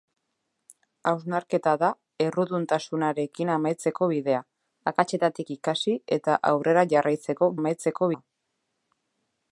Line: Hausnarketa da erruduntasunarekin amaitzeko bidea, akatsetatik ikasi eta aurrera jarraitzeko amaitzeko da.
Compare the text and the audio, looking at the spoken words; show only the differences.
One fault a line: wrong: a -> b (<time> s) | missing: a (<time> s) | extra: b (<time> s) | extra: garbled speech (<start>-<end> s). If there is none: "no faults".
no faults